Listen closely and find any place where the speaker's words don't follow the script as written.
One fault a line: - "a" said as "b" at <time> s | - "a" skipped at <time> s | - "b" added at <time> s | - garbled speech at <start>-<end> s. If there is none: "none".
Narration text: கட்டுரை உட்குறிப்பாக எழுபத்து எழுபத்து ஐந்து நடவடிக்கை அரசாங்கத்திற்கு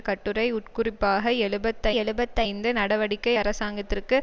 none